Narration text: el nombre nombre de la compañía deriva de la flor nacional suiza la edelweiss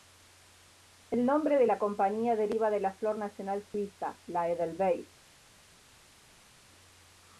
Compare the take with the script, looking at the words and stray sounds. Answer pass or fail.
fail